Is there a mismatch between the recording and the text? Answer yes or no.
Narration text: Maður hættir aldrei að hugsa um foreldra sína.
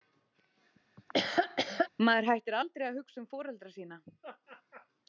no